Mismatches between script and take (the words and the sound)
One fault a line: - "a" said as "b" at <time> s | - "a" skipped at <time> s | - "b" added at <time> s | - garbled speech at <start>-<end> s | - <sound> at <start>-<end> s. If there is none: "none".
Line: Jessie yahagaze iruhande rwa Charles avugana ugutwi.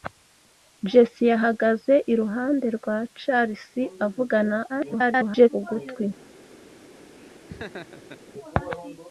- garbled speech at 4.7-5.5 s
- laugh at 7.2-8.2 s